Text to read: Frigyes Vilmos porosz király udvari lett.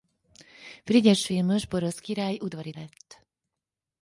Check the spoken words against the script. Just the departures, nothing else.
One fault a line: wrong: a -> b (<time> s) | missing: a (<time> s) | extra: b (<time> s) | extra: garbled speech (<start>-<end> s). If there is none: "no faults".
no faults